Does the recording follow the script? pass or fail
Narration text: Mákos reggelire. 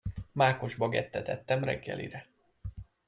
fail